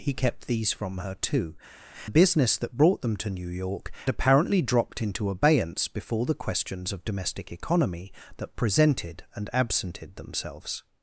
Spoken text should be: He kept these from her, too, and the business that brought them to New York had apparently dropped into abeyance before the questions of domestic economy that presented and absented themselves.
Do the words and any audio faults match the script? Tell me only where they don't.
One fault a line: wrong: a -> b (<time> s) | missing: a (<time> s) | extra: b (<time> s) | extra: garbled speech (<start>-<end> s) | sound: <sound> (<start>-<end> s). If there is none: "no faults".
missing: and (1.6 s)
missing: had (3.9 s)